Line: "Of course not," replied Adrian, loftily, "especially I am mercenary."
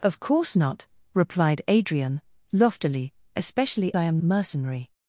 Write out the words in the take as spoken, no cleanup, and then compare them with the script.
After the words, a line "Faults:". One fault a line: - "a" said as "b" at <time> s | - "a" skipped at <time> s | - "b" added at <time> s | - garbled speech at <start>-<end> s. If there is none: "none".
"Of course not," replied Adrian, loftily, "especially I am mercenary."
Faults:
none